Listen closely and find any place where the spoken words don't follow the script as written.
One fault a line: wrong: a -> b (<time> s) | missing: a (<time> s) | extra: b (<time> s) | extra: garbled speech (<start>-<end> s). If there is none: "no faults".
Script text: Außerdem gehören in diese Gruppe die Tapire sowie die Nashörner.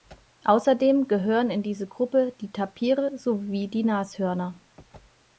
no faults